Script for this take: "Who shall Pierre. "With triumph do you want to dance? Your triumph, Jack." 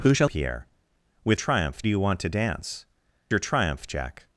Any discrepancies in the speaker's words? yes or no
no